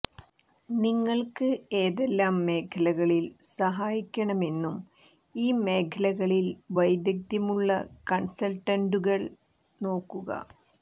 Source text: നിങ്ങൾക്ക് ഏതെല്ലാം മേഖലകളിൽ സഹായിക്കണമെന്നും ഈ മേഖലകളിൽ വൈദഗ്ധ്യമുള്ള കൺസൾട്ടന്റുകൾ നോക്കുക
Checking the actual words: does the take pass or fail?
pass